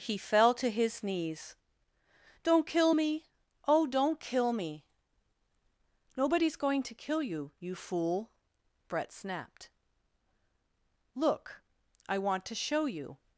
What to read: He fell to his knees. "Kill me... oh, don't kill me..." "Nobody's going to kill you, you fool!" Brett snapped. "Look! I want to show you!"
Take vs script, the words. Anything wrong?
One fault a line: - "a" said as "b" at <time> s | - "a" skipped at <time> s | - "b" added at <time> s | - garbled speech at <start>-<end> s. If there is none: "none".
- "Don't" added at 2.4 s